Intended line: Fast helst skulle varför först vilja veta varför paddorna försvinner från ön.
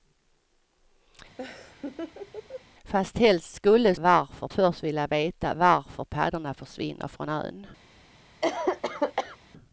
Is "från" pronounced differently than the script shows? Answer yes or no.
no